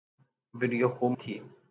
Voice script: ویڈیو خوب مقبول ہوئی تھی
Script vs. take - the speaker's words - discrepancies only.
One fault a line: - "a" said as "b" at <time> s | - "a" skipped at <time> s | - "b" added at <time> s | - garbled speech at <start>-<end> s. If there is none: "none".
- "مقبول ہوئی" skipped at 1.1 s